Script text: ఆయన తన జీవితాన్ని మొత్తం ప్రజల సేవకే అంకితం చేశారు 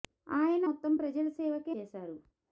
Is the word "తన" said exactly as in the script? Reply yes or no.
no